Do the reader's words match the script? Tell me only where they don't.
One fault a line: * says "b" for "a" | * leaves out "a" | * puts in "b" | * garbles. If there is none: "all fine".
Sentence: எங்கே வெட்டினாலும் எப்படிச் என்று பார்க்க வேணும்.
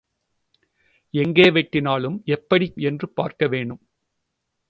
all fine